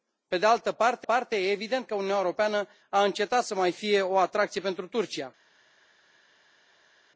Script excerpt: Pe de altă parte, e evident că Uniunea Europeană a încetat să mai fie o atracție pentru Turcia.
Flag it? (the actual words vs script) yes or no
yes